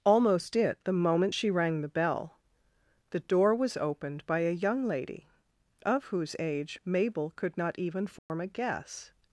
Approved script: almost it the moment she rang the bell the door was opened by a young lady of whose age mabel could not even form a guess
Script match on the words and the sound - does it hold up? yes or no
no